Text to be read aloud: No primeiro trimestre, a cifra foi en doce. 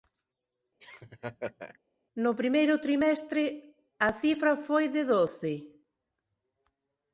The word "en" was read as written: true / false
false